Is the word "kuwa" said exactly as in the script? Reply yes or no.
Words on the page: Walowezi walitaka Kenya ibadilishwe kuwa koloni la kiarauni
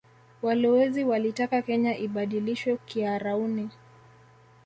no